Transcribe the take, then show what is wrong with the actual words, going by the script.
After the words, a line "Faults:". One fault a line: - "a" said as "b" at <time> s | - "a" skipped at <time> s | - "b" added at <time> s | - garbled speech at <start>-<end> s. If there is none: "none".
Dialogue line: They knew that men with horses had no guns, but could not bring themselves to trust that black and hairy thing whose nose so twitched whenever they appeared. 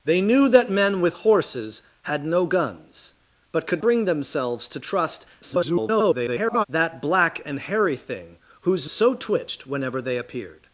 They knew that men with horses had no guns, but could bring themselves to trust [garbled] that black and hairy thing whose so twitched whenever they appeared.
Faults:
- "not" skipped at 3.8 s
- garbled speech at 5.4-6.6 s
- "nose" skipped at 8.9 s